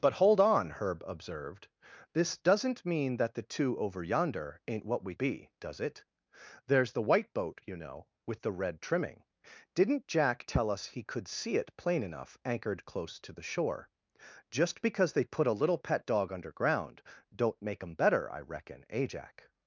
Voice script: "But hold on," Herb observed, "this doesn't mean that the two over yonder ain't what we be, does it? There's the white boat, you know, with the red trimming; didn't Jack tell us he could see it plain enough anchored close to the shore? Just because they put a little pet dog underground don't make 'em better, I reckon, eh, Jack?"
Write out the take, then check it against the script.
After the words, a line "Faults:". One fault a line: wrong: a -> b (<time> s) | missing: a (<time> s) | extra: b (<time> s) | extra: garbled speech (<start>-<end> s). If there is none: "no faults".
"But hold on," Herb observed, "this doesn't mean that the two over yonder ain't what we be, does it? There's the white boat, you know, with the red trimming; didn't Jack tell us he could see it plain enough anchored close to the shore? Just because they put a little pet dog underground don't make 'em better, I reckon, eh, Jack?"
Faults:
no faults